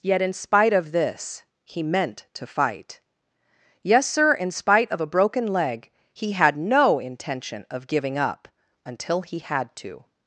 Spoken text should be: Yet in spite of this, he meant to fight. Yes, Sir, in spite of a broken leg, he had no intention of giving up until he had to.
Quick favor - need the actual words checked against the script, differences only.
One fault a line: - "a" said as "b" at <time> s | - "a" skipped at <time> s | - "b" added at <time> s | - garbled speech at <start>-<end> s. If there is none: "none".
none